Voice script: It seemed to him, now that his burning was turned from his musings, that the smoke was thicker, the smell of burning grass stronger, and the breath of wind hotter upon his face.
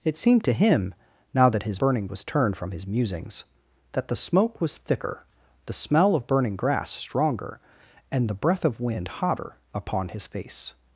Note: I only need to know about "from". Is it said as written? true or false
true